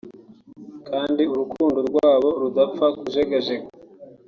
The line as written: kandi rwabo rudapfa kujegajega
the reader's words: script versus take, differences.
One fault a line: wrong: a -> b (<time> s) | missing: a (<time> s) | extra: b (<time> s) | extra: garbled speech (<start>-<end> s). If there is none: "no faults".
extra: urukundo (1.3 s)